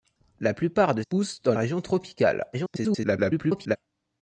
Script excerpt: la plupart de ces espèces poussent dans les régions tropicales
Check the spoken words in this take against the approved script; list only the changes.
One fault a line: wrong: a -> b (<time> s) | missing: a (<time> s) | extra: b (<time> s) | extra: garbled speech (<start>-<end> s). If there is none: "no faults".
missing: ces espèces (1.0 s)
missing: les (1.5 s)
extra: garbled speech (2.5-3.8 s)